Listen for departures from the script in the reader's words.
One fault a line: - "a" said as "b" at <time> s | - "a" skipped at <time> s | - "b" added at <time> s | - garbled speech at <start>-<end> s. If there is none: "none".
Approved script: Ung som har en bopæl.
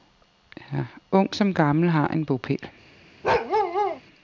- "gammel" added at 1.5 s